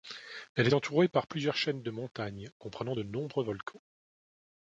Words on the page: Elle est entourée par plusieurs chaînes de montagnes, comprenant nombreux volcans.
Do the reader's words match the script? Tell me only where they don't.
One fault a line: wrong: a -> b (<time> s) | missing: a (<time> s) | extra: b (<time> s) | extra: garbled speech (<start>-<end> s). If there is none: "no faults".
extra: de (2.9 s)